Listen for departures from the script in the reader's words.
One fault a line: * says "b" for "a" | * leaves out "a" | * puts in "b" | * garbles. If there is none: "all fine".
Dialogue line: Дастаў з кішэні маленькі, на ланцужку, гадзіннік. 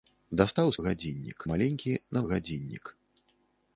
* says "гадзіннік" for "кішэні"
* leaves out "ланцужку"